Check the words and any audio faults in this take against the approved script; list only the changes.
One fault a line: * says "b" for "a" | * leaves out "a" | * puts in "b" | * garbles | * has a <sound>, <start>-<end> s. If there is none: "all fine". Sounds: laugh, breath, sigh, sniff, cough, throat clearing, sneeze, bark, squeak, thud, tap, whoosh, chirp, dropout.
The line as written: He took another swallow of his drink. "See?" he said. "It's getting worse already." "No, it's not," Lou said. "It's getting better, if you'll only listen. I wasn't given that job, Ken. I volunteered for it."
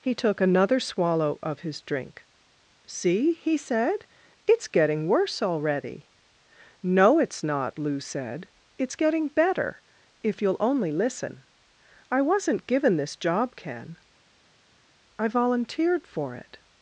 * says "this" for "that"